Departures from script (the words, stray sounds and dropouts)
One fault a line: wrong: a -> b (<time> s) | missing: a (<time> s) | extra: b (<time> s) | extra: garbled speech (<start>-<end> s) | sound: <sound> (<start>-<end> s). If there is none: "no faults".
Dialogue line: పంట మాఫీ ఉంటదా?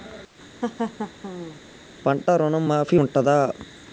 sound: laugh (0.6-1.6 s)
extra: ఋణం (2.4 s)